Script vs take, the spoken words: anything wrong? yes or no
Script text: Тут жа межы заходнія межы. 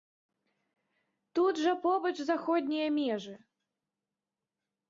yes